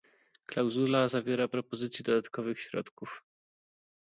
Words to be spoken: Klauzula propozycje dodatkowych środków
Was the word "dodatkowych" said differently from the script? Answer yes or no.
no